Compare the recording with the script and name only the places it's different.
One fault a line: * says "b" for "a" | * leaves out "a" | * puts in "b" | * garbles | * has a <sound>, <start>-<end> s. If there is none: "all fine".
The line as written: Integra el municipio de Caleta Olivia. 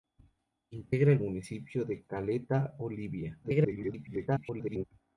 * garbles